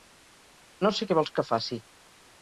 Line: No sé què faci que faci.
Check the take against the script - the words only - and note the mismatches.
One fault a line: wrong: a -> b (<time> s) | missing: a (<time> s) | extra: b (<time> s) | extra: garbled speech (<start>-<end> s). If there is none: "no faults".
wrong: faci -> vols (1.2 s)